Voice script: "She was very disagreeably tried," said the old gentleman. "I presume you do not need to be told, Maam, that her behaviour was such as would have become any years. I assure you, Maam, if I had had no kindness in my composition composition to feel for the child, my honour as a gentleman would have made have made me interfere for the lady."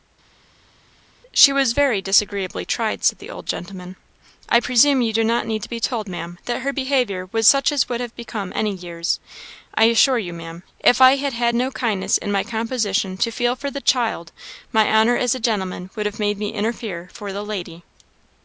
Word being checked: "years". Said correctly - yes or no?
yes